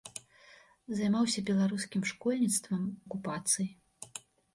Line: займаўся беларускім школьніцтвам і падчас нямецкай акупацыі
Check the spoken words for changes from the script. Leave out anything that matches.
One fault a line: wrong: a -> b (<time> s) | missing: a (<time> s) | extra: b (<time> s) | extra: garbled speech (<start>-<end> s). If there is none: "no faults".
missing: і падчас нямецкай (2.8 s)